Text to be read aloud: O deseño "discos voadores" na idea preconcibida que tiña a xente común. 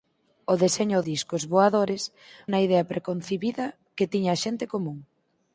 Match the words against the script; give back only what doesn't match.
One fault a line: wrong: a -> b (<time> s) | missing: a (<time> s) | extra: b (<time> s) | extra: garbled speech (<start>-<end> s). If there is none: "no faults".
no faults